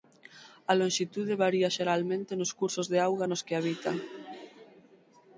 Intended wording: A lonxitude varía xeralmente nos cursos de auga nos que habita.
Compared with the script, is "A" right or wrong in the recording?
right